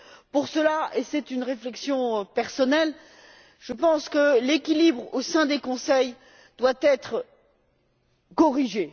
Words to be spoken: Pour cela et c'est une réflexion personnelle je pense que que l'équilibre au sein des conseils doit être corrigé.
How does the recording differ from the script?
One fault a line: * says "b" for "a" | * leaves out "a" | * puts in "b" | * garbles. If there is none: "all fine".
* leaves out "que"